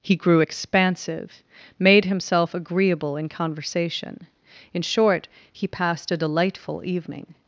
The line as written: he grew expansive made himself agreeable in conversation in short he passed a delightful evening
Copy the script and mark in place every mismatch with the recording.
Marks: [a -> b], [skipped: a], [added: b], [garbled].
he grew expansive made himself agreeable in conversation in short he passed a delightful evening